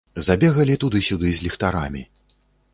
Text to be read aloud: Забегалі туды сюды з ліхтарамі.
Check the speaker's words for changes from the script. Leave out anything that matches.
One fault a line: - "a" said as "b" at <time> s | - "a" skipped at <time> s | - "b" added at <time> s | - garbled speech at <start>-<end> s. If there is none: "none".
none